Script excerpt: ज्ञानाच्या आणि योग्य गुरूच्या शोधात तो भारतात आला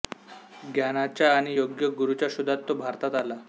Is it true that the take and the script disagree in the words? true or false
false